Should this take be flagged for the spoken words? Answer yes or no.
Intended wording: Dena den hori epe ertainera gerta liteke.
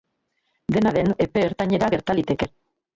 yes